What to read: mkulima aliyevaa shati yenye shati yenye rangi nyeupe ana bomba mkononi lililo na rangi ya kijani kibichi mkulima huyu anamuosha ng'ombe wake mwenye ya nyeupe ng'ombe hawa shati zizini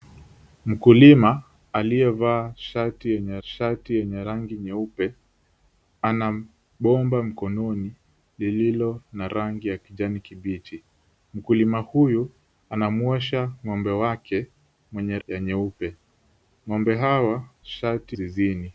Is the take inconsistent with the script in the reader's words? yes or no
no